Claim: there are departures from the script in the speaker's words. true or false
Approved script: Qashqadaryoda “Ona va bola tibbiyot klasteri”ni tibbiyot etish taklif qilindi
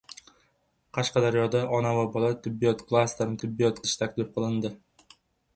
false